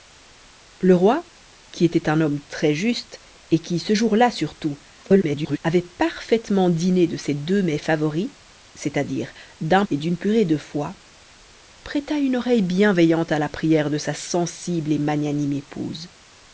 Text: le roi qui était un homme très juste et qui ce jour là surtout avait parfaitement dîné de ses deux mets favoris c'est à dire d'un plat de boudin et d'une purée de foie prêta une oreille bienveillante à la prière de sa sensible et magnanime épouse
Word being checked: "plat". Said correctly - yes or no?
no